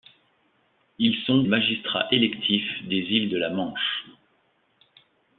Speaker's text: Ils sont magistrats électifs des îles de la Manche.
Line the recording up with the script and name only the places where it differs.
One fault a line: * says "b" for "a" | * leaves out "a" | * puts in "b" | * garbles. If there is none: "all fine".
all fine